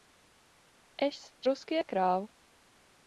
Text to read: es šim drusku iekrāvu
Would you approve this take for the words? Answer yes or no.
no